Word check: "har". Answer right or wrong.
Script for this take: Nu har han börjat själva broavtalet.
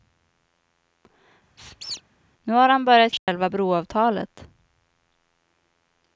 right